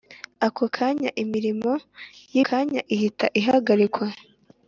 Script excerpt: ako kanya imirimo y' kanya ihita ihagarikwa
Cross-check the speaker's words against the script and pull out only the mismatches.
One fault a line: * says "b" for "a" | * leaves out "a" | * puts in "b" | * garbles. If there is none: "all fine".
all fine